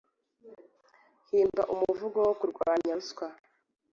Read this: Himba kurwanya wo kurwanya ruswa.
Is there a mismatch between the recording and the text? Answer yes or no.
yes